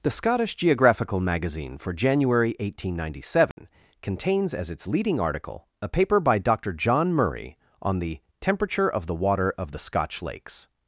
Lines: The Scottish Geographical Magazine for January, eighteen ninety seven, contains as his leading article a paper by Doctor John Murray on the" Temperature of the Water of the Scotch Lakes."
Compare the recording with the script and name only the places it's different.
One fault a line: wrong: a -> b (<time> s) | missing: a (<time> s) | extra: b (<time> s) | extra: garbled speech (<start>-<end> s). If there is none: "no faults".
wrong: his -> its (4.7 s)